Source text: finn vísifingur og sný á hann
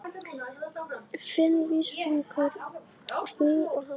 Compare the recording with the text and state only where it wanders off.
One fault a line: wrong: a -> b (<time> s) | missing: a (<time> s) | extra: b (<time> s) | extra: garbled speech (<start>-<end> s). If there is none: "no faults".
no faults